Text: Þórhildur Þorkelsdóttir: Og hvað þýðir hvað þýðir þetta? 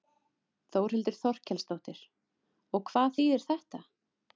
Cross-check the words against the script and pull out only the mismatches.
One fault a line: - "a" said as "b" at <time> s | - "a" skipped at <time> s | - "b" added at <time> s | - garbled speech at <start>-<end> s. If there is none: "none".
- "hvað þýðir" skipped at 3.5 s